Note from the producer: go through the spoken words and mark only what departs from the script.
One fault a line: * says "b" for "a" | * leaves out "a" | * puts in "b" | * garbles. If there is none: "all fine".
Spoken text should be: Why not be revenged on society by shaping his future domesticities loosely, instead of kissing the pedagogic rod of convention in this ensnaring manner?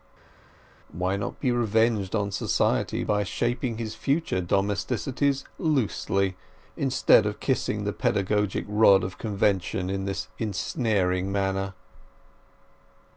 all fine